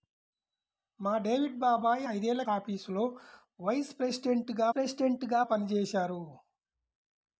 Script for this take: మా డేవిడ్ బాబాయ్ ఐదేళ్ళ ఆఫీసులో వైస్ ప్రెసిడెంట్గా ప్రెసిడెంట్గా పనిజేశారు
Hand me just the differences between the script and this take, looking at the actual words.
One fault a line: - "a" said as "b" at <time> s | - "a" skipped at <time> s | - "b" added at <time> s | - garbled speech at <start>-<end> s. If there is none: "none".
none